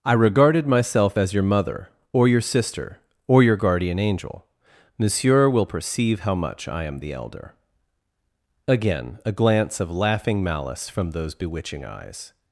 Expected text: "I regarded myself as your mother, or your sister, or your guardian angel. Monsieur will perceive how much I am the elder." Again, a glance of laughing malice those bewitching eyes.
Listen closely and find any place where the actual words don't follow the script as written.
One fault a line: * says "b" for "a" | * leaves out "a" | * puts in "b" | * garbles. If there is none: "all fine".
* puts in "from"